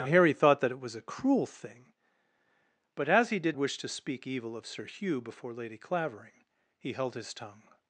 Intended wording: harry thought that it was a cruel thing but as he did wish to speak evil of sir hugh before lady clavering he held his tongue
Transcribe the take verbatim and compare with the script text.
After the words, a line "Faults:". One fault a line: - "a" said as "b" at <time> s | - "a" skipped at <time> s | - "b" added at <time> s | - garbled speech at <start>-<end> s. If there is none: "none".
harry thought that it was a cruel thing but as he did wish to speak evil of sir hugh before lady clavering he held his tongue
Faults:
none